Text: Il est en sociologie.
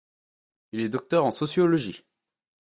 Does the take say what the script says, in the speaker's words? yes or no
no